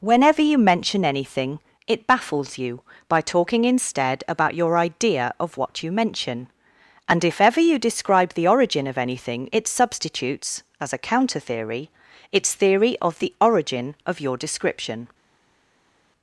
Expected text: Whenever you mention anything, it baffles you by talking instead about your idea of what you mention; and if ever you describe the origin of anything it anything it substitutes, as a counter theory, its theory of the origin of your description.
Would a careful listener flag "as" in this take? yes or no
no